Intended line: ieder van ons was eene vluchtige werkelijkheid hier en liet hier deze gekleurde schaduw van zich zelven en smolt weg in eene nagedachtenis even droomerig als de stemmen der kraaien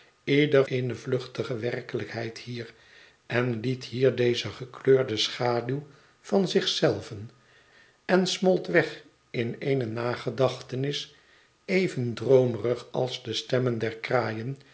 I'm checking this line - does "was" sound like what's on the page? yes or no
no